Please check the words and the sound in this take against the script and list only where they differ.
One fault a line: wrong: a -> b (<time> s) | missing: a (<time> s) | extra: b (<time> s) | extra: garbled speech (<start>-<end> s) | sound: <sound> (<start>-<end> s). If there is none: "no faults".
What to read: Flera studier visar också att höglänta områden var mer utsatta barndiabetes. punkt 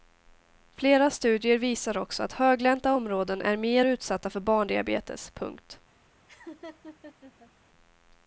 wrong: var -> är (3.4 s)
extra: för (4.3 s)
sound: laugh (6.3-7.5 s)